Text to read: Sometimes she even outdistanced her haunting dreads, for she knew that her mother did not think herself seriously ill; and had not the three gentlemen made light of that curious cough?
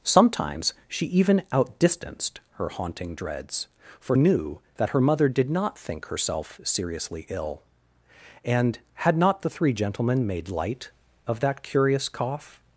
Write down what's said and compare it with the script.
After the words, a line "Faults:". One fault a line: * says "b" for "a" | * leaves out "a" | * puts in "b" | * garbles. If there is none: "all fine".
Sometimes she even outdistanced her haunting dreads, for knew that her mother did not think herself seriously ill; and had not the three gentlemen made light of that curious cough?
Faults:
* leaves out "she"